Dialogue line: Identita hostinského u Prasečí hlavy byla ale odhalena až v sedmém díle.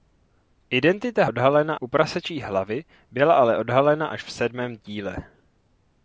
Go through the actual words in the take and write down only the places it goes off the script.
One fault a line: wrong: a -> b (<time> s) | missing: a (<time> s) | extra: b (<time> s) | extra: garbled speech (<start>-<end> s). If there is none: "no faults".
wrong: hostinského -> odhalena (1.3 s)